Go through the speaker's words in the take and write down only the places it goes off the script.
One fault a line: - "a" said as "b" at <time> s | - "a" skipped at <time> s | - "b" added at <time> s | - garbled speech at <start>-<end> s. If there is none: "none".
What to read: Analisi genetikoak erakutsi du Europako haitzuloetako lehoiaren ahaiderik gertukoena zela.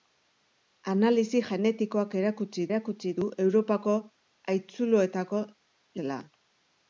- "erakutsi" added at 2.7 s
- "lehoiaren ahaiderik gertukoena" skipped at 5.4 s